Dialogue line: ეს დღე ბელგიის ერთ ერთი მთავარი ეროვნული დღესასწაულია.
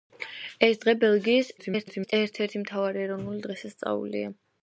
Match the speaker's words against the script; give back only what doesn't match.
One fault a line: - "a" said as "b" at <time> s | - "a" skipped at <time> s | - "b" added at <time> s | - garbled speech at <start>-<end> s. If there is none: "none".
- garbled speech at 1.6-2.1 s